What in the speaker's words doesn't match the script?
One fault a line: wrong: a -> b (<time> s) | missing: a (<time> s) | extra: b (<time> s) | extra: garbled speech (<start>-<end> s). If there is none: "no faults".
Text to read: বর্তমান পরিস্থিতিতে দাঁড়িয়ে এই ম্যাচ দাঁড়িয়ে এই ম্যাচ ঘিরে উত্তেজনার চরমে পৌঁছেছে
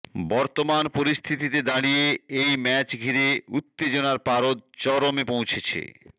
missing: দাঁড়িয়ে এই ম্যাচ (2.9 s)
extra: পারদ (4.3 s)